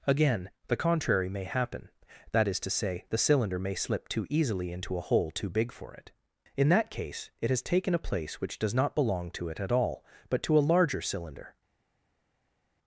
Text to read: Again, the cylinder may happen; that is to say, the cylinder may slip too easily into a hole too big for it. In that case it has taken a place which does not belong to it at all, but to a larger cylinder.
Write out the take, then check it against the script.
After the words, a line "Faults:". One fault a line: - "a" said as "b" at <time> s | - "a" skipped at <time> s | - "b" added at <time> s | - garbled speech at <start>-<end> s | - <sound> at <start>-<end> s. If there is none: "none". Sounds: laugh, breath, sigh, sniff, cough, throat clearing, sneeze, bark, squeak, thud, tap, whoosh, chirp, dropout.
Again, the contrary may happen; that is to say, the cylinder may slip too easily into a hole too big for it. In that case it has taken a place which does not belong to it at all, but to a larger cylinder.
Faults:
- "cylinder" said as "contrary" at 0.8 s